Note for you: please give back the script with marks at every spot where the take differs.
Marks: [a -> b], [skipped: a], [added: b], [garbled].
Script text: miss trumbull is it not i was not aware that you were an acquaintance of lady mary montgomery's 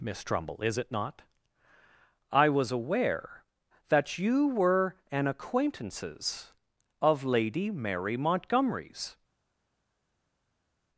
miss trumbull is it not i was [skipped: not] aware that you were an [acquaintance -> acquaintances] of lady mary montgomery's